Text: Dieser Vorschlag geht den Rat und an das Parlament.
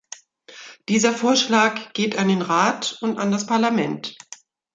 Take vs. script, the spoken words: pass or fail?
fail